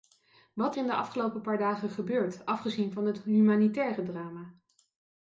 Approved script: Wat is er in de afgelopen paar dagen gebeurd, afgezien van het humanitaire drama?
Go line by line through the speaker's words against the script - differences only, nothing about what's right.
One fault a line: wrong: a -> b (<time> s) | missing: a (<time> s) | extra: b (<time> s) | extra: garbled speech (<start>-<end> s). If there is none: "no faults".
missing: is (0.8 s)